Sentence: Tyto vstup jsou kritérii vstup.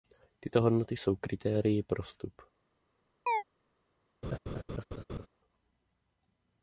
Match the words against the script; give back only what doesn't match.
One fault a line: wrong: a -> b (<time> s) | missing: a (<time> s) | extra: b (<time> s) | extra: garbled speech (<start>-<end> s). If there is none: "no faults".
wrong: vstup -> hodnoty (0.6 s)
extra: pro (1.8 s)